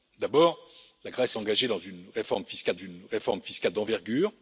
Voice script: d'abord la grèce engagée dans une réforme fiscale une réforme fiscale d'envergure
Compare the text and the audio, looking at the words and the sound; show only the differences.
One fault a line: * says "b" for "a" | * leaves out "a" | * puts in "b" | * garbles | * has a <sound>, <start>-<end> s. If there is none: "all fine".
all fine